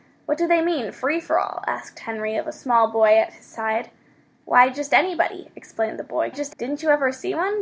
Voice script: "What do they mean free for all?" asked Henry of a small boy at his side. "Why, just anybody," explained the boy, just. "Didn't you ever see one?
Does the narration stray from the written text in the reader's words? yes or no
no